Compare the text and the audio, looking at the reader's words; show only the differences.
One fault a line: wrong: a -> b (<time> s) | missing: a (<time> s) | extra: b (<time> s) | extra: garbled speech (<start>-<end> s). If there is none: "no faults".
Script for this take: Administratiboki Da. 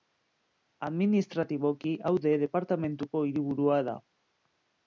extra: Aude departamenduko hiriburua (2.1 s)